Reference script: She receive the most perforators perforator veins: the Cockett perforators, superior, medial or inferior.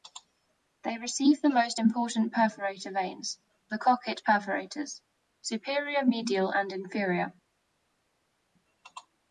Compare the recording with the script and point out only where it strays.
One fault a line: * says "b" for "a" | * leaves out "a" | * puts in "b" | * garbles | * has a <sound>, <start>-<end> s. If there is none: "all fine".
* says "They" for "She"
* says "important" for "perforators"
* says "and" for "or"